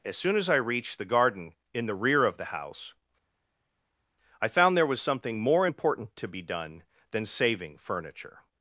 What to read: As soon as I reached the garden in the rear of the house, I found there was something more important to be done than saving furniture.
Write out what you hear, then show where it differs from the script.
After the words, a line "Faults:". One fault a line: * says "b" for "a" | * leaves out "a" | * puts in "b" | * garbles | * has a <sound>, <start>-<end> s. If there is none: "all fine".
As soon as I reached the garden in the rear of the house, I found there was something more important to be done than saving furniture.
Faults:
all fine